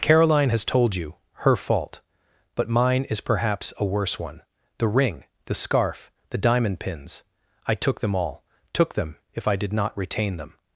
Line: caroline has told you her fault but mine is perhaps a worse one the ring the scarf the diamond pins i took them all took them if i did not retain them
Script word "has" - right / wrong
right